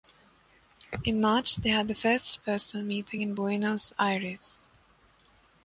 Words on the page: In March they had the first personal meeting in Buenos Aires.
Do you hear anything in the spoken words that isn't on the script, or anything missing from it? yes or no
no